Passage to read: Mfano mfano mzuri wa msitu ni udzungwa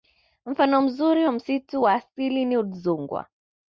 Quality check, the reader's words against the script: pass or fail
fail